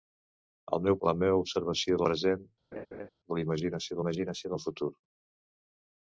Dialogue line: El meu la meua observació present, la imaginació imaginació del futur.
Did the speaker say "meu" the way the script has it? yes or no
yes